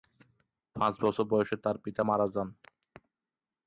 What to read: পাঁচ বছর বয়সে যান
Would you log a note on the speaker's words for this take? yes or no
yes